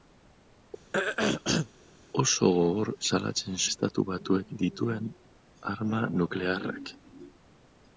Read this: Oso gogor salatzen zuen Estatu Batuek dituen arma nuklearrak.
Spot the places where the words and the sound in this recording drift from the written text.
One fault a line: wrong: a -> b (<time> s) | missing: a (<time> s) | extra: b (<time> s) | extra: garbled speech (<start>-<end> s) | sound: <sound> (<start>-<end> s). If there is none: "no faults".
sound: throat clearing (0.9-1.7 s)
missing: zuen (3.6 s)